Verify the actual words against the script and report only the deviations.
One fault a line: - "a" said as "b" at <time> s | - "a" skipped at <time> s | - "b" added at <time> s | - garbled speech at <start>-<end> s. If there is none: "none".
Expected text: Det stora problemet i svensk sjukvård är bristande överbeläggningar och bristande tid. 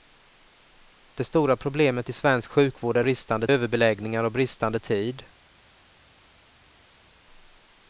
none